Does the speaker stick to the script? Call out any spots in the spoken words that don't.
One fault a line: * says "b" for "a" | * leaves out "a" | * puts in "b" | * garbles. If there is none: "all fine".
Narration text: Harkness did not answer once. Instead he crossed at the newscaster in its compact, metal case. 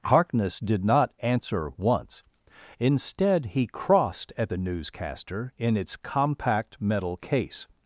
all fine